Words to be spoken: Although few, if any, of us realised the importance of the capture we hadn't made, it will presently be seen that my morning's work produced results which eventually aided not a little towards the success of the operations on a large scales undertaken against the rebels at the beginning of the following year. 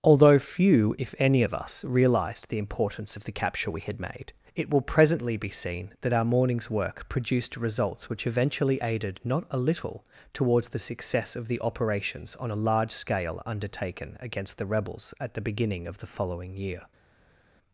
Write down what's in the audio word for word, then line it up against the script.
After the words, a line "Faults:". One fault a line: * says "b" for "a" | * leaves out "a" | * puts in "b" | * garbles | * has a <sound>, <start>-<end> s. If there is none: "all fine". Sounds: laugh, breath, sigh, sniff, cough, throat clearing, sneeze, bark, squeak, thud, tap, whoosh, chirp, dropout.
Although few, if any, of us realised the importance of the capture we had made, it will presently be seen that our morning's work produced results which eventually aided not a little towards the success of the operations on a large scale undertaken against the rebels at the beginning of the following year.
Faults:
* says "had" for "hadn't"
* says "our" for "my"
* says "scale" for "scales"